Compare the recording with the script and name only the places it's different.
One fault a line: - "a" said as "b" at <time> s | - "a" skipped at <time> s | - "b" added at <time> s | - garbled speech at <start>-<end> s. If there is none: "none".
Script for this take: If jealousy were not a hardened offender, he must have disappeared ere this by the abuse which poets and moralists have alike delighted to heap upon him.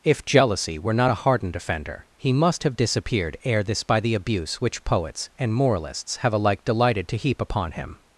none